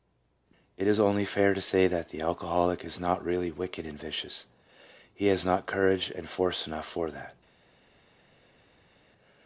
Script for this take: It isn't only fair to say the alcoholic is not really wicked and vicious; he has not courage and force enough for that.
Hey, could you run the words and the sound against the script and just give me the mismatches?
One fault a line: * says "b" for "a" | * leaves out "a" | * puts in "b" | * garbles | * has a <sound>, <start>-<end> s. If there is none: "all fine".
* says "is" for "isn't"
* puts in "that"